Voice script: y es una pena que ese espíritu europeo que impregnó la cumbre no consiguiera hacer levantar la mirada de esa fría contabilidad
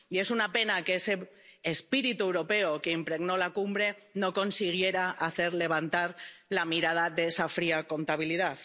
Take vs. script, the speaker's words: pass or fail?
pass